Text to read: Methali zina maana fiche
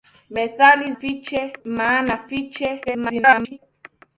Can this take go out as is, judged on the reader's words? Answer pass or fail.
fail